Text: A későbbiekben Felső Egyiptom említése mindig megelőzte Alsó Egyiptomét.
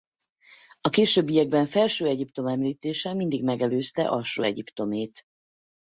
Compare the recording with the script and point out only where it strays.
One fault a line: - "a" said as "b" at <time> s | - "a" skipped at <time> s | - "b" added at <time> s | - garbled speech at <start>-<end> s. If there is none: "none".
none